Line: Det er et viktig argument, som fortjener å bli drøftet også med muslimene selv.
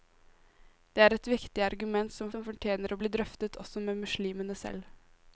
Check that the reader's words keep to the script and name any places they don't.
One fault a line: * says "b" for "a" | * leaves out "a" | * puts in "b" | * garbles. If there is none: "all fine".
* puts in "som"